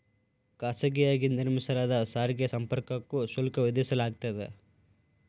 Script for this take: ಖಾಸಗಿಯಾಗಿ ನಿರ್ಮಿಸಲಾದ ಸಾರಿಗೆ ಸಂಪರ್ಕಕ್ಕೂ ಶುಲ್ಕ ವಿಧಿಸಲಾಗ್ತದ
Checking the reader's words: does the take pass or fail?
pass